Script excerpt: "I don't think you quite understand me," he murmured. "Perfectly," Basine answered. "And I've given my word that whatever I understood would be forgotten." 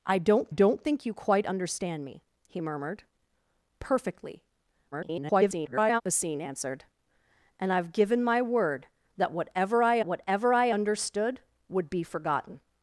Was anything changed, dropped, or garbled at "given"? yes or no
no